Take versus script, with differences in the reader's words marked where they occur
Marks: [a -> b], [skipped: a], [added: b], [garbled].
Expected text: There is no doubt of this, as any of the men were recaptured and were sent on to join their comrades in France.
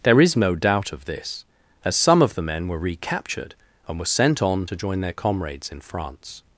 There is no doubt of this, as [any -> some] of the men were recaptured and were sent on to join their comrades in France.